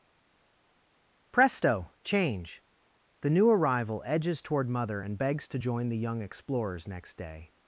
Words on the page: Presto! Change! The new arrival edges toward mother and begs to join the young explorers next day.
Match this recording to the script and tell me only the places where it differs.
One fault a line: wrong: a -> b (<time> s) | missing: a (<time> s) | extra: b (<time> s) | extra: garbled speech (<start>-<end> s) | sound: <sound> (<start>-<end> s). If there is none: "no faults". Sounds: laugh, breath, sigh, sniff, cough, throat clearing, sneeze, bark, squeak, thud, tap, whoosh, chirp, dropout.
no faults